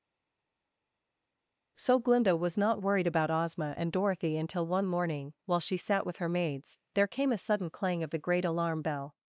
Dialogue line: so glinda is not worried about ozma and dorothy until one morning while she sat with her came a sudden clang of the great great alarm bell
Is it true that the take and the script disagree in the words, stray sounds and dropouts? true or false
true